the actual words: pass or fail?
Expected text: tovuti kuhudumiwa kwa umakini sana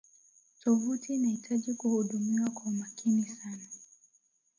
fail